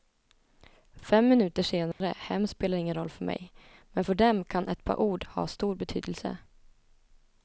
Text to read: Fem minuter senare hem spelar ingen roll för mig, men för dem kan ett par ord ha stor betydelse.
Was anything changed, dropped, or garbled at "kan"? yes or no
no